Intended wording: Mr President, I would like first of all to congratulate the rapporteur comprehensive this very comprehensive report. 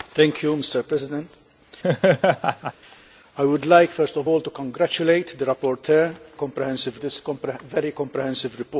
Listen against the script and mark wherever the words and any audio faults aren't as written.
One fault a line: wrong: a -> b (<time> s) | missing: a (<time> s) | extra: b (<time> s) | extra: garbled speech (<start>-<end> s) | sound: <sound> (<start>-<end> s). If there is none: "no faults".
sound: laugh (1.8-2.7 s)